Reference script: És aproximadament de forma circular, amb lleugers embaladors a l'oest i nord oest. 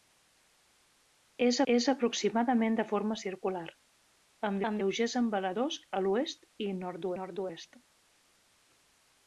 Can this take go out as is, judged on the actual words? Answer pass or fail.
fail